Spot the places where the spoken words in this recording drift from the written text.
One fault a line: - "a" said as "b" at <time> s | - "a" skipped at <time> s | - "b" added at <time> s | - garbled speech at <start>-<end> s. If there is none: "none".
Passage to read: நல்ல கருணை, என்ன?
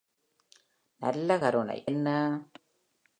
none